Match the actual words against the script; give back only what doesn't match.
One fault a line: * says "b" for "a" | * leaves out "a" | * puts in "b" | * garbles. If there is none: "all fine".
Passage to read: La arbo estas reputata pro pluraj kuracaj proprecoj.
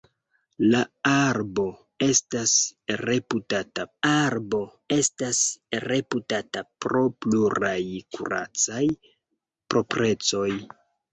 * puts in "arbo estas reputata"